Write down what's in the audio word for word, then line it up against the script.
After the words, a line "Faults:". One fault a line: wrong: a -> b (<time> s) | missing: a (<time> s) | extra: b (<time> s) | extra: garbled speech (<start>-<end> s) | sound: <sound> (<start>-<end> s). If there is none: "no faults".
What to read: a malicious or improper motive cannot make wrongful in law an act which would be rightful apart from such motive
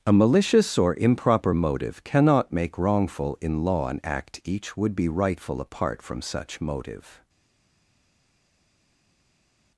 a malicious or improper motive cannot make wrongful in law an act each would be rightful apart from such motive
Faults:
wrong: which -> each (4.4 s)